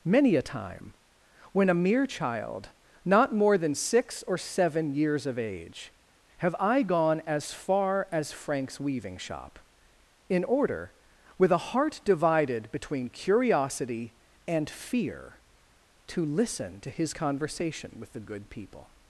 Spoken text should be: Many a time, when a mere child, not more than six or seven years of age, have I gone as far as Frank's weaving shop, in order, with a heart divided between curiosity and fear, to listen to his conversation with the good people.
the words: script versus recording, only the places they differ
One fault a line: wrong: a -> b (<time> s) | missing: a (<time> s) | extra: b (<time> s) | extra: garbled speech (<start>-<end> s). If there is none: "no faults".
no faults